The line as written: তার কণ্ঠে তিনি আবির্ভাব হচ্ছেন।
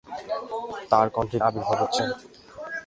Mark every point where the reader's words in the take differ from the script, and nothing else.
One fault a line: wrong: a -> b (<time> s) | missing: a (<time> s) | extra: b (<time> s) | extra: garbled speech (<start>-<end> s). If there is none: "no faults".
missing: তিনি (1.4 s)